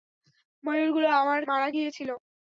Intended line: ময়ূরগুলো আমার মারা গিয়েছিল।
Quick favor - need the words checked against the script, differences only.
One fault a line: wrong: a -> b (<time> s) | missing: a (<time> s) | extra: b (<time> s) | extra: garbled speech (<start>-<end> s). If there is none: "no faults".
no faults